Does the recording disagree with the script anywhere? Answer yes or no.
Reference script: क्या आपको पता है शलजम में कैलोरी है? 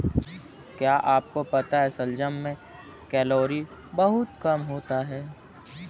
yes